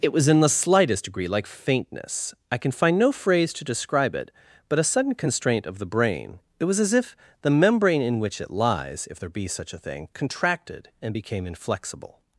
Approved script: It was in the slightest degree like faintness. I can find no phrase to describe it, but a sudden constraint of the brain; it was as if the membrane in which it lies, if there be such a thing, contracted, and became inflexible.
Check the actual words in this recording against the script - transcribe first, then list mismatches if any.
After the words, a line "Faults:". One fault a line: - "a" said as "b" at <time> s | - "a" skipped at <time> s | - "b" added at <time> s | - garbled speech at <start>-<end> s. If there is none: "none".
It was in the slightest degree like faintness. I can find no phrase to describe it, but a sudden constraint of the brain; it was as if the membrane in which it lies, if there be such a thing, contracted, and became inflexible.
Faults:
none